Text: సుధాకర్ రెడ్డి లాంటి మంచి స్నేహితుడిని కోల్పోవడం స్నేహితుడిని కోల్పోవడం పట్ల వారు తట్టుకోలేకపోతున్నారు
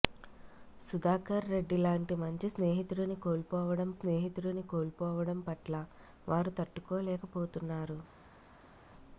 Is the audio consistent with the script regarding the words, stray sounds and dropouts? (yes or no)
yes